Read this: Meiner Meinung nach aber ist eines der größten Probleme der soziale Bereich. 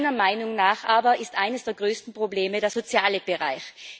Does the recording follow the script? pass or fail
pass